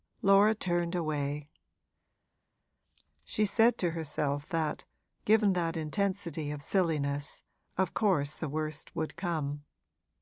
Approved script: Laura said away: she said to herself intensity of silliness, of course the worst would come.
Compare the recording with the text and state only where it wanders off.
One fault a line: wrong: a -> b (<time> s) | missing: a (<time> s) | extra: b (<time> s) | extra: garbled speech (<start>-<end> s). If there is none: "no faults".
wrong: said -> turned (0.6 s)
extra: that given that (4.5 s)